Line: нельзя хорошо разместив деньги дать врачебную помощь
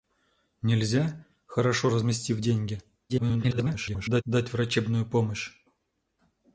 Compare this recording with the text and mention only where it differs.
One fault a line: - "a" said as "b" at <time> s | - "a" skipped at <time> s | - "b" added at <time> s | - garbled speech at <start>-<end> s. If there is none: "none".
- garbled speech at 3.1-4.2 s